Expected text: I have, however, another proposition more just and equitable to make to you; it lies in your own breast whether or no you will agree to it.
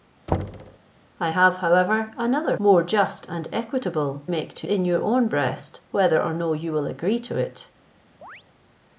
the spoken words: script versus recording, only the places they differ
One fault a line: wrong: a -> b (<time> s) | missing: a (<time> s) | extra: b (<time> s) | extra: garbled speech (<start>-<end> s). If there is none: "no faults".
missing: proposition (2.5 s)
missing: to (4.2 s)
missing: you it lies (4.7 s)